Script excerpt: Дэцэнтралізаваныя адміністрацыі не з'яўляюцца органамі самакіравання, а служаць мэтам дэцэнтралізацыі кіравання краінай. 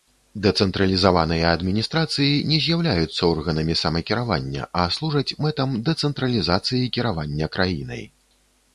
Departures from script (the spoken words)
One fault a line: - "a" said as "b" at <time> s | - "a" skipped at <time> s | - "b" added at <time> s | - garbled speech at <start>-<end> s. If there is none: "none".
none